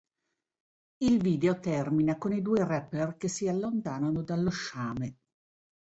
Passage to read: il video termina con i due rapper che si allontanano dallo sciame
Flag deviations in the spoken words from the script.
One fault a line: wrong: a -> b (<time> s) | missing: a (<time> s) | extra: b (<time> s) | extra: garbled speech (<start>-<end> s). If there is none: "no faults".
no faults